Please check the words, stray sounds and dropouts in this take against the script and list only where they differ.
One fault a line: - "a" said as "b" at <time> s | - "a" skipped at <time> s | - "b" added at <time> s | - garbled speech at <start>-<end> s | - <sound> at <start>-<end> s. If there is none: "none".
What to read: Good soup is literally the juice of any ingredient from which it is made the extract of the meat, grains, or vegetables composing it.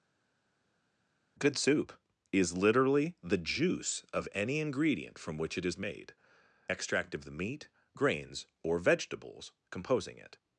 - "the" skipped at 6.1 s